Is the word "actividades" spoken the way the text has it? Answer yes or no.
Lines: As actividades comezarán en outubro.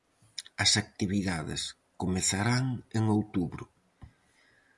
yes